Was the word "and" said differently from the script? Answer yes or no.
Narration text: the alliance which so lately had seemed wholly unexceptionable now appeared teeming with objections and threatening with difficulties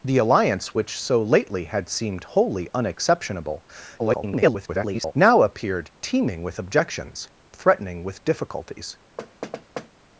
yes